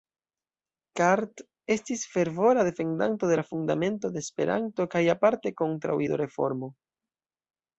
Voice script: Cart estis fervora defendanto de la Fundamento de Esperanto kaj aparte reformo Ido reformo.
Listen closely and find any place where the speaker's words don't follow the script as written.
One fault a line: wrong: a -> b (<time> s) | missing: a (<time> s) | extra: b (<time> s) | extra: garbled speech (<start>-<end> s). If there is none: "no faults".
wrong: reformo -> kontraŭ (5.6 s)